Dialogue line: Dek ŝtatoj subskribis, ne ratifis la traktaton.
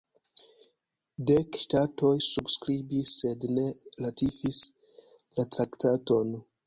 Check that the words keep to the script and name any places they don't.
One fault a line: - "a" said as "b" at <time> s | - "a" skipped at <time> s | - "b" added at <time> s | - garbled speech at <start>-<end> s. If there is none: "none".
- "sed" added at 3.2 s